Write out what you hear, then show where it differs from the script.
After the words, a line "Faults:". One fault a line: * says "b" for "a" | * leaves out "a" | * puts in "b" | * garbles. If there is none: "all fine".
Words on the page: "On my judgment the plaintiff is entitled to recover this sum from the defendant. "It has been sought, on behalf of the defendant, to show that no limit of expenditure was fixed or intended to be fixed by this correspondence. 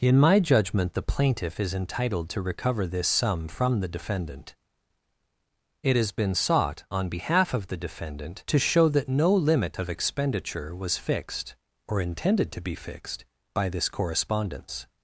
"In my judgment the plaintiff is entitled to recover this sum from the defendant. "It has been sought, on behalf of the defendant, to show that no limit of expenditure was fixed or intended to be fixed by this correspondence.
Faults:
* says "In" for "On"